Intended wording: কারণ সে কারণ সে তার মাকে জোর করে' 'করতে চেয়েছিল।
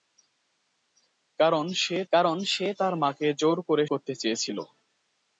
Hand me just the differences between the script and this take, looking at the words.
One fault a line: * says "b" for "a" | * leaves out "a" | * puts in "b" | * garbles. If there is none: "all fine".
all fine